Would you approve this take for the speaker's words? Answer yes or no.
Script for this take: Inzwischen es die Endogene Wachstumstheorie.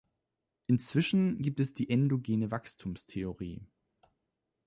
no